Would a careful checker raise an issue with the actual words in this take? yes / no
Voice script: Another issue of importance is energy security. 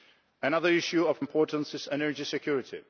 no